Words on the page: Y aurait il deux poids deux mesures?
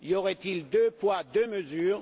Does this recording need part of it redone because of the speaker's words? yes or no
no